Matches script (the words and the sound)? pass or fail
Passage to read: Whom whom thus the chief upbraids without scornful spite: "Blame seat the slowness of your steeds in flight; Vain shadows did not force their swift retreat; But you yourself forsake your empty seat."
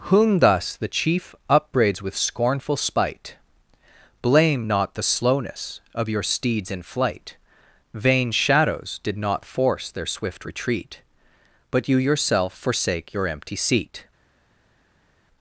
fail